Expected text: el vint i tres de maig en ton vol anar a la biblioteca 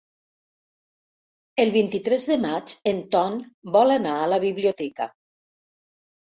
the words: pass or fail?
pass